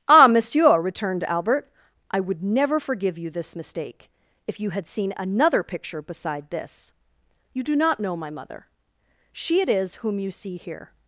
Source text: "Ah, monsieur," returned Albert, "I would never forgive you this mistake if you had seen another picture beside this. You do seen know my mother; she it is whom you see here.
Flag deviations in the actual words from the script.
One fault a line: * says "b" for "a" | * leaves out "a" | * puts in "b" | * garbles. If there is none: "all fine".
* says "not" for "seen"